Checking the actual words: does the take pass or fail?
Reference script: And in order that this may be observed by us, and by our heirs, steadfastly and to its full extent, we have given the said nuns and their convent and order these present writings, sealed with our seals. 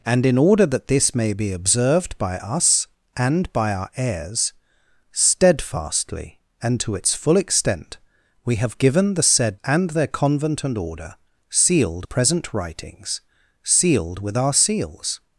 fail